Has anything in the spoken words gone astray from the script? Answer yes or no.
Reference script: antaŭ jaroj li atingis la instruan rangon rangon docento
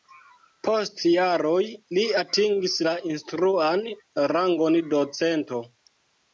yes